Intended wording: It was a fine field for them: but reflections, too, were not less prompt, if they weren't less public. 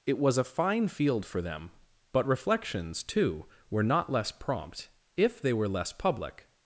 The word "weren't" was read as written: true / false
false